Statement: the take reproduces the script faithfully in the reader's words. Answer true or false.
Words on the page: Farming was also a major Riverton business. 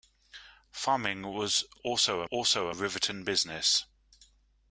false